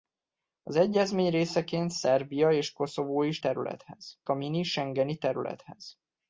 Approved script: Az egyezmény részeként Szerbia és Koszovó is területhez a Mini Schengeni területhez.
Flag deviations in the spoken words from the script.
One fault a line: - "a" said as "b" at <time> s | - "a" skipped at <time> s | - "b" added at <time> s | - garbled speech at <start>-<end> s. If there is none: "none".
none